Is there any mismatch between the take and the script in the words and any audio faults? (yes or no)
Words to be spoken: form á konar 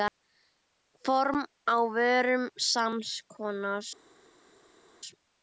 yes